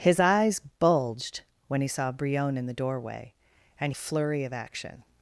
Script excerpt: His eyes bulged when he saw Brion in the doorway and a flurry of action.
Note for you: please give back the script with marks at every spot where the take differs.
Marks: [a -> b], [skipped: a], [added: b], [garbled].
His eyes bulged when he saw Brion in the doorway and a flurry of action.